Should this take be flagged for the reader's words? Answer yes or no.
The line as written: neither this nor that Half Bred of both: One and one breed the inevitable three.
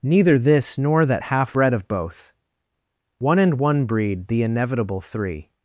no